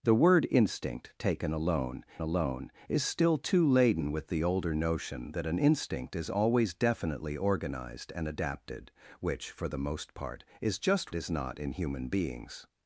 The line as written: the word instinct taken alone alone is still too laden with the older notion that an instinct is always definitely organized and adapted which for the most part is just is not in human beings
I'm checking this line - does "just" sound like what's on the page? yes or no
yes